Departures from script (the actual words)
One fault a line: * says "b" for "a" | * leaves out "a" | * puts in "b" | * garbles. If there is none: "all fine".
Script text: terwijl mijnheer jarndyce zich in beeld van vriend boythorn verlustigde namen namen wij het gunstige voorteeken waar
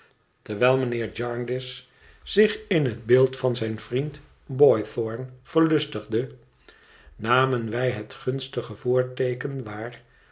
* puts in "het"
* puts in "zijn"
* leaves out "namen"